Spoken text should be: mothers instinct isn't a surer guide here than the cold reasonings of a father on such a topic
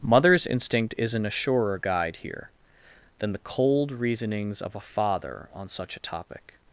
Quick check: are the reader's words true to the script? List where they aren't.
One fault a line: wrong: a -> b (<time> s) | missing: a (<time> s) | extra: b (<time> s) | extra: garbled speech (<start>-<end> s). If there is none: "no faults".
no faults